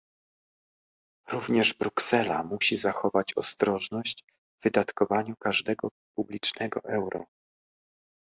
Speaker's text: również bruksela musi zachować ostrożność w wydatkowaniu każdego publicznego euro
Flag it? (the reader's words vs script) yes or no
no